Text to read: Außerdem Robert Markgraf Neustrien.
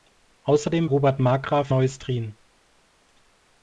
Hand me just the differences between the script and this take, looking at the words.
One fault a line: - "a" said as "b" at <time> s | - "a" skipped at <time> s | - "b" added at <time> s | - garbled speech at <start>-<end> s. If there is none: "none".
none